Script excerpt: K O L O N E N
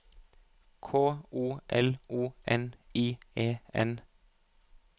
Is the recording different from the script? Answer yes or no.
yes